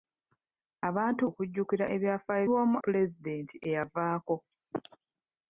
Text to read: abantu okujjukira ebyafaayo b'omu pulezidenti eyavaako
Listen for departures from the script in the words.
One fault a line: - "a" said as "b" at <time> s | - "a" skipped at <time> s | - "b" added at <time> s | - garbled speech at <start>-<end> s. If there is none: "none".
none